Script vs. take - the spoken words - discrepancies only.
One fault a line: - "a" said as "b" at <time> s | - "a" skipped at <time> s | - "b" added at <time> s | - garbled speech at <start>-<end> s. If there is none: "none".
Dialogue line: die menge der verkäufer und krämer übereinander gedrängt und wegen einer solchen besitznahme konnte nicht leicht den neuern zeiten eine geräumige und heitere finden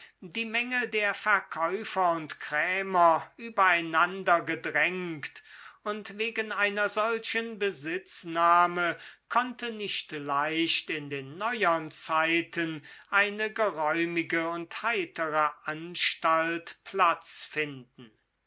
- "in" added at 10.9 s
- "anstalt platz" added at 15.6 s